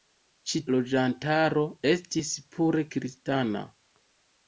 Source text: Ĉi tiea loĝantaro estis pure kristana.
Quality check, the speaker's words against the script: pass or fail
fail